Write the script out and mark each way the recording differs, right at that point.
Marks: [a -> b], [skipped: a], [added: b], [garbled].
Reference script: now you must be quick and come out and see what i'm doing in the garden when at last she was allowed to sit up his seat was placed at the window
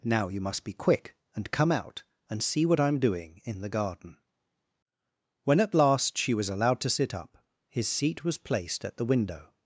now you must be quick and come out and see what i'm doing in the garden when at last she was allowed to sit up his seat was placed at the window